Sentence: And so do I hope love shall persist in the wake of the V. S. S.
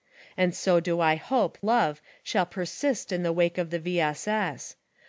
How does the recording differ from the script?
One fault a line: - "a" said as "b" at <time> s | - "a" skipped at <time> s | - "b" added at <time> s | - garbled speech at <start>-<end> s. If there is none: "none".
none